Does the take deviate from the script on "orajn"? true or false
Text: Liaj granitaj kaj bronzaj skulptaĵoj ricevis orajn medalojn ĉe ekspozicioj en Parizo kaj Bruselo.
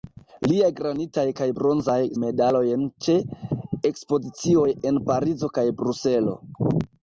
true